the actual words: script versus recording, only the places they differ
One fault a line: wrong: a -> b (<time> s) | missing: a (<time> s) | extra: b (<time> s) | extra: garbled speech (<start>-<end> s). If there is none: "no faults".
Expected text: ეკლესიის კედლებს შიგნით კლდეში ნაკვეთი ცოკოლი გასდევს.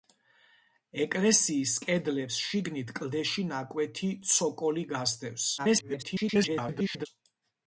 extra: garbled speech (5.6-7.1 s)